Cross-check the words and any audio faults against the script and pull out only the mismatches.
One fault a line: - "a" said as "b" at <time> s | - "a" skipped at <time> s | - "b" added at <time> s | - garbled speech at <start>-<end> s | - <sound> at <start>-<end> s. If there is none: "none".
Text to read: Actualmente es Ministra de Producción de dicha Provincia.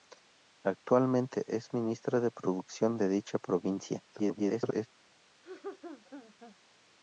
- garbled speech at 4.1-4.9 s
- laugh at 5.4-6.6 s